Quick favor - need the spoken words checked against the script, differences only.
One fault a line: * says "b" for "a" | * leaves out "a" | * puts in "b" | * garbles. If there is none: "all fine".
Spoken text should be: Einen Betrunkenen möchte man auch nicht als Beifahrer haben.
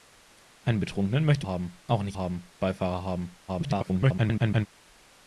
* says "haben" for "man"
* says "haben" for "als"
* garbles